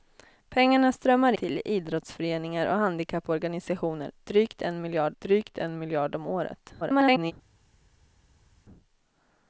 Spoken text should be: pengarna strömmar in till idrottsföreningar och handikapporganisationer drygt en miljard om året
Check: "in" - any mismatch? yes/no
yes